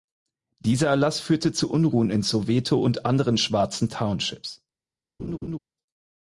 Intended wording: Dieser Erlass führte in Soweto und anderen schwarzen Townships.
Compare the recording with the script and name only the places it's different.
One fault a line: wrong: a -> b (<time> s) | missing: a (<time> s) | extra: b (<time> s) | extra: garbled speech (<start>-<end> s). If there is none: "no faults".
extra: zu Unruhen (1.5 s)